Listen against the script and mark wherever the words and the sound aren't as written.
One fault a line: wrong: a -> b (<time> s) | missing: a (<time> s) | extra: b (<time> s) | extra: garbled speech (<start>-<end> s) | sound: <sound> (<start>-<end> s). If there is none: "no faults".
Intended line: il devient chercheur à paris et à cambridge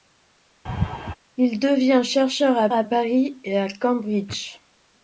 sound: laugh (0.7-1.2 s)
extra: à (2.7 s)